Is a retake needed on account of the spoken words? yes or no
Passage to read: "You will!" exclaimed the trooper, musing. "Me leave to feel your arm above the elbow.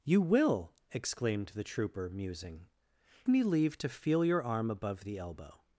no